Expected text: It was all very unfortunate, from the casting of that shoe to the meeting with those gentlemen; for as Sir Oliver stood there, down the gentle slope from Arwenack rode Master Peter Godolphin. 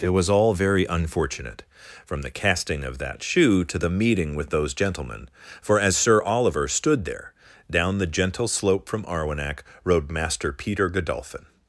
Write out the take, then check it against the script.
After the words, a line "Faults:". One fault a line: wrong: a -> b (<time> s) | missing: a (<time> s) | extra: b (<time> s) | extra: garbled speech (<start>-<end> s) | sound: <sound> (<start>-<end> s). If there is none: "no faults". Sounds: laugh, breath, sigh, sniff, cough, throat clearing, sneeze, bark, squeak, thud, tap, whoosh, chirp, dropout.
It was all very unfortunate, from the casting of that shoe to the meeting with those gentlemen; for as Sir Oliver stood there, down the gentle slope from Arwenack rode Master Peter Godolphin.
Faults:
no faults